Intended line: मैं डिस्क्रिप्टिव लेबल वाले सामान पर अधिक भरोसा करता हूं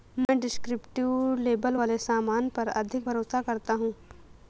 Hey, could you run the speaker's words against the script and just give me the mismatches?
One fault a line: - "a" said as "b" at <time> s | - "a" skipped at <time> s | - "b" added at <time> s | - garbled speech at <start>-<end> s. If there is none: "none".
none